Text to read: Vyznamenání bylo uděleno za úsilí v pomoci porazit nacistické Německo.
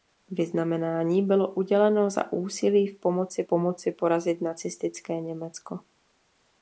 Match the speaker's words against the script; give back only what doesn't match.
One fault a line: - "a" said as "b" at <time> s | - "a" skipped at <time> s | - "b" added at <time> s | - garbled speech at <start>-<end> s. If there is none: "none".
- "pomoci" added at 3.5 s